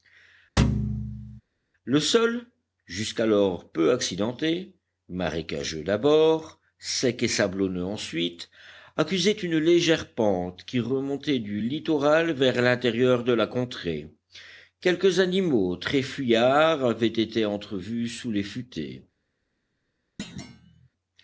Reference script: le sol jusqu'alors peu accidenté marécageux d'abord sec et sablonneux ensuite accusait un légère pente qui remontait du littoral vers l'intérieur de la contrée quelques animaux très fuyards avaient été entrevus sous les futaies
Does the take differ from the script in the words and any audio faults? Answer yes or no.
yes